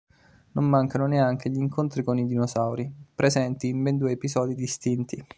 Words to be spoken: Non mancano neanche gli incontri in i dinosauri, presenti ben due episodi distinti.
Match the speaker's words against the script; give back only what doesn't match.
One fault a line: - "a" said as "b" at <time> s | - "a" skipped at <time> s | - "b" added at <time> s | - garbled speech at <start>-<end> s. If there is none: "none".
- "in" said as "con" at 2.0 s
- "in" added at 3.7 s